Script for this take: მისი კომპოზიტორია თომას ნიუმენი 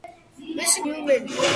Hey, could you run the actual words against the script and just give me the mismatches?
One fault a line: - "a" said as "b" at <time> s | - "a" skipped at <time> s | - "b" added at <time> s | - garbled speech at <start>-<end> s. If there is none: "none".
- "კომპოზიტორია თომას" skipped at 0.8 s